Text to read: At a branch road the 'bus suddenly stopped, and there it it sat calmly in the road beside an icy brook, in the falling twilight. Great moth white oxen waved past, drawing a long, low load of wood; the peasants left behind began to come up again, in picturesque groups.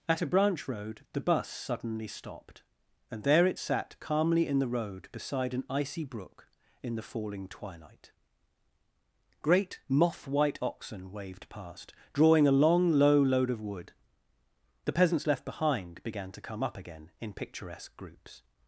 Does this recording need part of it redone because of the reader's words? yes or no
yes